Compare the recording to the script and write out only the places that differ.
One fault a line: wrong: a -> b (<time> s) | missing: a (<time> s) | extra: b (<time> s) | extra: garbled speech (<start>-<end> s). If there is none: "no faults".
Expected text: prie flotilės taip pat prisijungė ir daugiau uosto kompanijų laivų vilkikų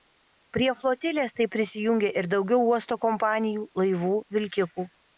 missing: pat (1.5 s)